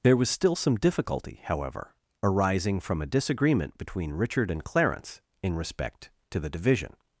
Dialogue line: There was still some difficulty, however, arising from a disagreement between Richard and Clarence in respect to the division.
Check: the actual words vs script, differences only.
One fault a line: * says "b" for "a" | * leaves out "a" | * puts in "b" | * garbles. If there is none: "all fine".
all fine